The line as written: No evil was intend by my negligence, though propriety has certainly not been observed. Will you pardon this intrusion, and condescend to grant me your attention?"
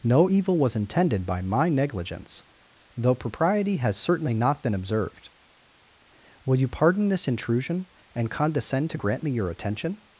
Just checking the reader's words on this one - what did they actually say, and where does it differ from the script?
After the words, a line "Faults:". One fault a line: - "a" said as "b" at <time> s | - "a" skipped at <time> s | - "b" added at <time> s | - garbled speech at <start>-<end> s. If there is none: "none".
No evil was intended by my negligence, though propriety has certainly not been observed. Will you pardon this intrusion, and condescend to grant me your attention?"
Faults:
- "intend" said as "intended" at 0.8 s